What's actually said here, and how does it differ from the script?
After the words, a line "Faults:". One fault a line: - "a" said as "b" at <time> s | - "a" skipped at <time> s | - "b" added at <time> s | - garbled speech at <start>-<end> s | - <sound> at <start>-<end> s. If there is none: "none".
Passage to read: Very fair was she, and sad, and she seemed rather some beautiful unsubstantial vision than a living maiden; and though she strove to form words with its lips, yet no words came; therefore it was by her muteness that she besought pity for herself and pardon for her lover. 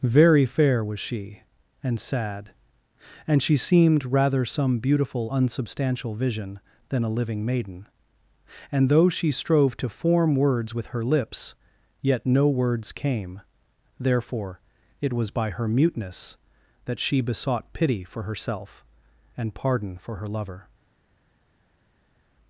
Very fair was she, and sad, and she seemed rather some beautiful unsubstantial vision than a living maiden; and though she strove to form words with her lips, yet no words came; therefore it was by her muteness that she besought pity for herself and pardon for her lover.
Faults:
- "its" said as "her" at 10.9 s